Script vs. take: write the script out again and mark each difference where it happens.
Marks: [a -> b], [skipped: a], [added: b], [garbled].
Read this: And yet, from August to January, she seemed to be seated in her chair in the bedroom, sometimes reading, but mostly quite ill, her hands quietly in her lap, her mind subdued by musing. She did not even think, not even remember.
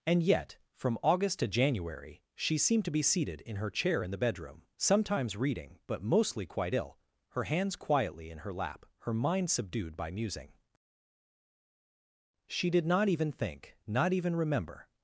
And yet, from August to January, she seemed to be seated in her chair in the bedroom, sometimes reading, but mostly quite ill, her hands quietly in her lap, her mind subdued by musing. She did not even think, not even remember.